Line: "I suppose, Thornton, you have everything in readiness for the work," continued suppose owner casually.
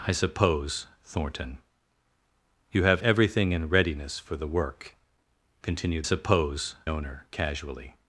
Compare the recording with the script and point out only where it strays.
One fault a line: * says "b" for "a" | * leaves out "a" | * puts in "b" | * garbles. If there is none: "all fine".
all fine